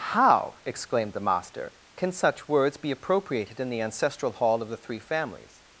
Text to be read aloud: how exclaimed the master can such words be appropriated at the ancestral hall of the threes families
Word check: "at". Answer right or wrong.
wrong